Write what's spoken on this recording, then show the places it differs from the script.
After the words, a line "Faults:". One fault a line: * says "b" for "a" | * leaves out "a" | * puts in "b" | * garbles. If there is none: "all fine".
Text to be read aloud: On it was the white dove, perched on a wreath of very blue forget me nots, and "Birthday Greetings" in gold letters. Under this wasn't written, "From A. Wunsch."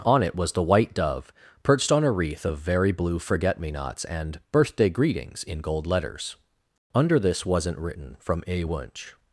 On it was the white dove, perched on a wreath of very blue forget me nots, and "Birthday Greetings" in gold letters. Under this wasn't written, "From A. Wunsch."
Faults:
all fine